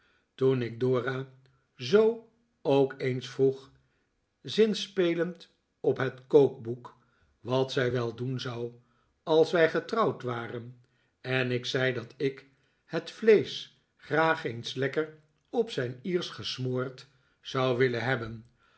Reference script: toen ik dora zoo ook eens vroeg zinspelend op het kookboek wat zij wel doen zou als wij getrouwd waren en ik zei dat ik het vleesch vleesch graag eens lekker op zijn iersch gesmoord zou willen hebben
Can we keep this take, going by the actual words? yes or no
no